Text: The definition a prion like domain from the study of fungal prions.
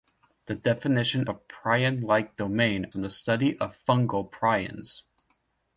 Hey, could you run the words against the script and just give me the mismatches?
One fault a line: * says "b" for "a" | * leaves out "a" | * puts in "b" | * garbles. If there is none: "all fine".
all fine